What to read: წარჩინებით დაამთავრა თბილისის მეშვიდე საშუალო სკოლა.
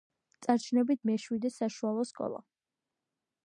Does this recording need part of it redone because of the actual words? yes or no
yes